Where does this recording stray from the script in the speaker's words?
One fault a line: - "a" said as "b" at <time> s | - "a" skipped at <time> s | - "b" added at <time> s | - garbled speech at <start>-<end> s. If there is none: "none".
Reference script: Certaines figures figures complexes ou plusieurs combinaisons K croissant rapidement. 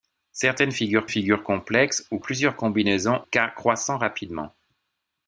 none